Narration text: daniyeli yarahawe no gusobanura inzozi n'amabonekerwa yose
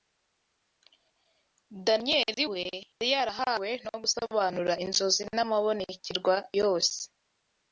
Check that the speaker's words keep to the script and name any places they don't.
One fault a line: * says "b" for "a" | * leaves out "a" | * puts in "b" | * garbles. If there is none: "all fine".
* puts in "we yari"